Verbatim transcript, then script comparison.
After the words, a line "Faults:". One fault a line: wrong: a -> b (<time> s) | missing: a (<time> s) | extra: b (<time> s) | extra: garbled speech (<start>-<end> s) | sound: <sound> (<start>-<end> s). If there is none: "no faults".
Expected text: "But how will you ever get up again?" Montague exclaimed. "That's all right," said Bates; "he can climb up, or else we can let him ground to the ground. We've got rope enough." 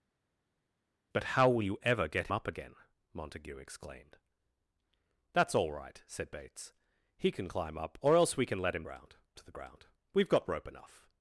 "But how will you ever get up again?" Montague exclaimed. "That's all right," said Bates; "he can climb up, or else we can let him ground to the ground. We've got rope enough."
Faults:
no faults